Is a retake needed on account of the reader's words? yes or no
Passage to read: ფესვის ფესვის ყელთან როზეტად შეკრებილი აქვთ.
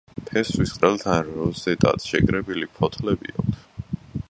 yes